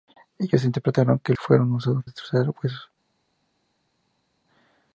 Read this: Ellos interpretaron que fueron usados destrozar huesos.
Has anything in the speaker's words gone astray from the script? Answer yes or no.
no